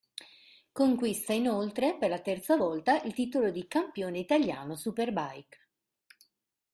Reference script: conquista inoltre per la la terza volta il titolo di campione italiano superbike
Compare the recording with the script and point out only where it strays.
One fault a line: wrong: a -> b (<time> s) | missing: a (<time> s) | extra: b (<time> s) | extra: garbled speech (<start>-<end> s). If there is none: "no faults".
missing: la (2.2 s)